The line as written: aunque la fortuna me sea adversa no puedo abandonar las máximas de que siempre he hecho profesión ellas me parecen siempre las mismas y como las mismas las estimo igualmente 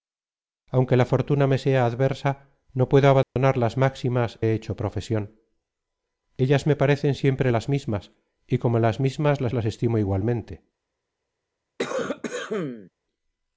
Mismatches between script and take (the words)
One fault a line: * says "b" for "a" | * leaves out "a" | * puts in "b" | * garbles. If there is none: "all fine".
* leaves out "de que siempre"
* puts in "las"